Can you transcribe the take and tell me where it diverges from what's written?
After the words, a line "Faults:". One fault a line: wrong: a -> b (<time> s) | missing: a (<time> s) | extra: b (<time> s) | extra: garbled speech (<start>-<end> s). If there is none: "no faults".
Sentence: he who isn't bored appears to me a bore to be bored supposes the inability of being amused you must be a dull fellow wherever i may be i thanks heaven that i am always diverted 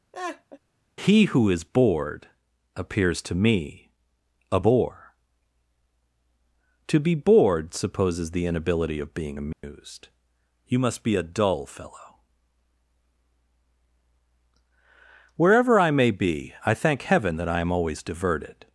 he who is bored appears to me a bore to be bored supposes the inability of being amused you must be a dull fellow wherever i may be i thank heaven that i am always diverted
Faults:
wrong: isn't -> is (1.5 s)
wrong: thanks -> thank (16.7 s)